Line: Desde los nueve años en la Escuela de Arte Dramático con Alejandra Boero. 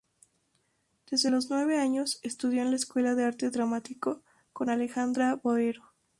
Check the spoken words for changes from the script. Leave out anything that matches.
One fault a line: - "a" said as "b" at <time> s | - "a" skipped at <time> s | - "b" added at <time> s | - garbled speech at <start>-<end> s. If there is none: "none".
- "estudió" added at 2.2 s